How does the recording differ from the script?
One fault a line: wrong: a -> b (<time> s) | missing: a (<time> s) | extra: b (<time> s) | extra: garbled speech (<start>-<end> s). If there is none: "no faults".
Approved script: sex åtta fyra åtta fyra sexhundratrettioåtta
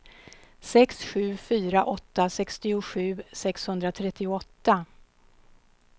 wrong: åtta -> sju (1.0 s)
wrong: fyra -> sextiosju (2.3 s)